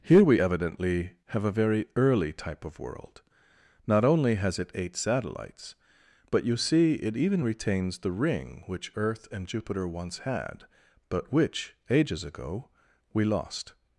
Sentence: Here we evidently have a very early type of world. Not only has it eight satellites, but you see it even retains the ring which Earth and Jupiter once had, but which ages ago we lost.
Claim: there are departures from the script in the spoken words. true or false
false